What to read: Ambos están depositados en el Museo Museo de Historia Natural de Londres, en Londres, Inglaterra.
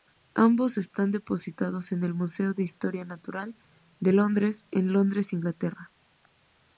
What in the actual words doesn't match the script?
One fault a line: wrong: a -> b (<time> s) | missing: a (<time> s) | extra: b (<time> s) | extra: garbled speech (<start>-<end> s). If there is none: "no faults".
missing: Museo (2.5 s)